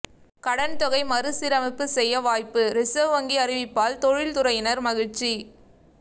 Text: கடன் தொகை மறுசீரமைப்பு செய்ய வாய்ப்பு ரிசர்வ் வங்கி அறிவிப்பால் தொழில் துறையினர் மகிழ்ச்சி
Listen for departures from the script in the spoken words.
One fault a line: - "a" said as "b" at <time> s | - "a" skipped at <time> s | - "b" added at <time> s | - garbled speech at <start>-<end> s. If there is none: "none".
none